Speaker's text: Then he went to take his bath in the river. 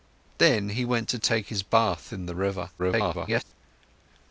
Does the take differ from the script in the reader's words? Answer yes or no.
yes